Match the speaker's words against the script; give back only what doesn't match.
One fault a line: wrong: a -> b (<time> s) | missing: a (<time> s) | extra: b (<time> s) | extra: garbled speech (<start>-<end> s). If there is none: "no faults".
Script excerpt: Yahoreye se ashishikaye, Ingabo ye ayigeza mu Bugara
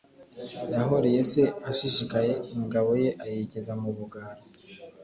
no faults